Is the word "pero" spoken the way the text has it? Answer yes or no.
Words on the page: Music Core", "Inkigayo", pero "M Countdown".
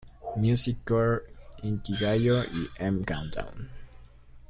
no